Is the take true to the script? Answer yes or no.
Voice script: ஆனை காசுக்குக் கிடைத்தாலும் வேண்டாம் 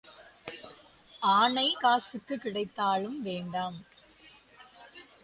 yes